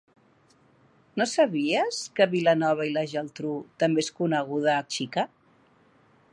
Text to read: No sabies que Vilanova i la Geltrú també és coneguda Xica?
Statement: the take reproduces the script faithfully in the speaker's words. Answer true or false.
true